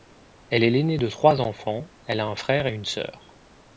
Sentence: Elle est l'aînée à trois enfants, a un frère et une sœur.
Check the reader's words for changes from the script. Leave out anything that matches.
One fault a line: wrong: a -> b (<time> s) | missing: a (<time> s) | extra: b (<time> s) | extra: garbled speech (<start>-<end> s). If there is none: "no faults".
wrong: à -> de (1.0 s)
extra: elle (2.1 s)